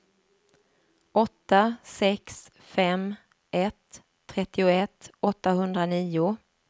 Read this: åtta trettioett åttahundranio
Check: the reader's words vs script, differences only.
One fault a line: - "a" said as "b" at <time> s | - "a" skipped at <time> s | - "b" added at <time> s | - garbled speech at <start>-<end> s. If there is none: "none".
- "sex fem ett" added at 1.8 s